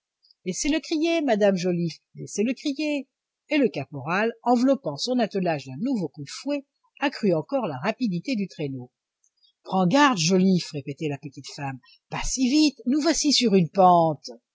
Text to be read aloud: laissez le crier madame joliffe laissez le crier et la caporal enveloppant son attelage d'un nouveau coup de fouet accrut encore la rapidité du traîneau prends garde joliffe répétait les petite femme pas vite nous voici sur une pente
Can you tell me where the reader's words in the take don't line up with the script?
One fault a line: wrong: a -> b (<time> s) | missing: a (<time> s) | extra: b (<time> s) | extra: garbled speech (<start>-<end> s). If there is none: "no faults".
wrong: la -> le (3.6 s)
wrong: les -> la (11.1 s)
extra: si (12.2 s)